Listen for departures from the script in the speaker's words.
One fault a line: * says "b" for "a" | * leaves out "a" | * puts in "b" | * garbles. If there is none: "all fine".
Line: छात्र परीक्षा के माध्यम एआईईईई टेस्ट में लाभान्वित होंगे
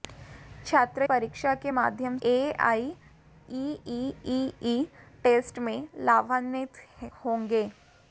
all fine